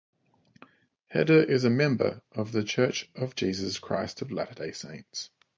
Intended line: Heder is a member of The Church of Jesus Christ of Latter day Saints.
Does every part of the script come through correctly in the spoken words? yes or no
yes